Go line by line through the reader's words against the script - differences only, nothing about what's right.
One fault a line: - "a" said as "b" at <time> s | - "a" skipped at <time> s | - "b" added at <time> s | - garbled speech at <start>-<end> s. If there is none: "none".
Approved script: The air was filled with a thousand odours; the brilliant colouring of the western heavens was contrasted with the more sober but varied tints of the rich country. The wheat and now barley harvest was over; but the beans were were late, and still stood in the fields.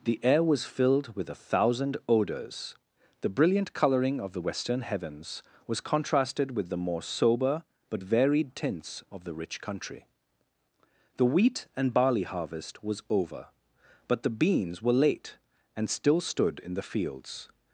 - "now" skipped at 11.9 s
- "were" skipped at 14.9 s